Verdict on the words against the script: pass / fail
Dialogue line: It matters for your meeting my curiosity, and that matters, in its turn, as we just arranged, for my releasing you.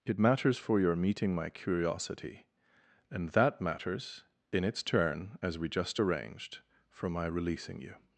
pass